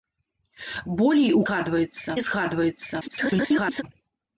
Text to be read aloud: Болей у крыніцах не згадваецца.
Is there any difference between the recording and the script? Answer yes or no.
yes